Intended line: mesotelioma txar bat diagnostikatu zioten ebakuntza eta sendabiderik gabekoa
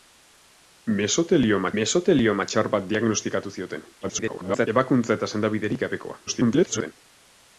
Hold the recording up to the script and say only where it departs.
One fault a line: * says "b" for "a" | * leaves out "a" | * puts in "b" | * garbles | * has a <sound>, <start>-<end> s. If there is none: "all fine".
* puts in "mesotelioma"
* garbles
* garbles